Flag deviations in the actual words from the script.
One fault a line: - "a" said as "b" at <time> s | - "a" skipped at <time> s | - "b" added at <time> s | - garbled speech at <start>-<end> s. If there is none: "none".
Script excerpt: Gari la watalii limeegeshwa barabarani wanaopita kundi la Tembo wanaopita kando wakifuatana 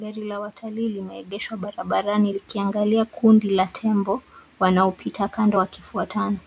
- "wanaopita" said as "likiangalia" at 2.3 s